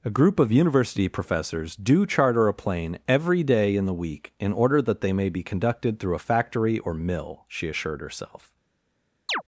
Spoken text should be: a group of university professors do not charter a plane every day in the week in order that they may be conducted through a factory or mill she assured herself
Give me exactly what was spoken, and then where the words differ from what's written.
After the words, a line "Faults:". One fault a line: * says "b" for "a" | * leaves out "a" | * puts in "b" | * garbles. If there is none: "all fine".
a group of university professors do charter a plane every day in the week in order that they may be conducted through a factory or mill she assured herself
Faults:
* leaves out "not"